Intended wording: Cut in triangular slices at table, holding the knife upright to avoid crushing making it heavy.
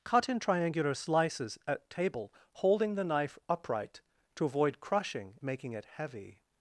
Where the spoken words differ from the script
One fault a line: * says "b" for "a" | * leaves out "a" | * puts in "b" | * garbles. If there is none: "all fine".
all fine